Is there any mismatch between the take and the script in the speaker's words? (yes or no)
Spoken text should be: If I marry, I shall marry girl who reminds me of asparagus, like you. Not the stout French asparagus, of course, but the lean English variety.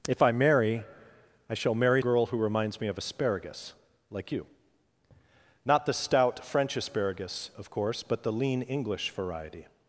no